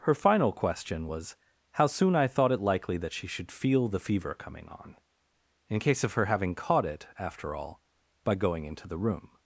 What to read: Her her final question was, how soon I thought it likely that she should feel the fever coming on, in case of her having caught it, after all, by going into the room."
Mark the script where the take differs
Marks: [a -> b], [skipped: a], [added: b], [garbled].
Her [skipped: her] final question was, how soon I thought it likely that she should feel the fever coming on, in case of her having caught it, after all, by going into the room."